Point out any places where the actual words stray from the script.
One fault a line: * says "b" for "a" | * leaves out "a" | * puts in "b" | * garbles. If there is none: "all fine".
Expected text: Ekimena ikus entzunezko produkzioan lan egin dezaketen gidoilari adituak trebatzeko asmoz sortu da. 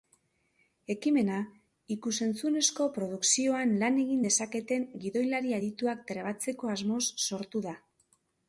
all fine